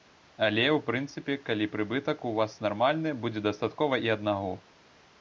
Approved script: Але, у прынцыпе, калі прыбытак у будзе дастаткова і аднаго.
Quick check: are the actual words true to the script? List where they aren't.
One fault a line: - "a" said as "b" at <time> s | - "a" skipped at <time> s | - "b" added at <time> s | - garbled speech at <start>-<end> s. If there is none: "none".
- "вас нармальны" added at 2.4 s